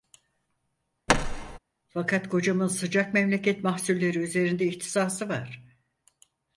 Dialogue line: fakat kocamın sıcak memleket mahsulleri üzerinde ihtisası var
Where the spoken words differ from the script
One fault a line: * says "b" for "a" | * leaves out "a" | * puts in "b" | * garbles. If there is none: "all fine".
all fine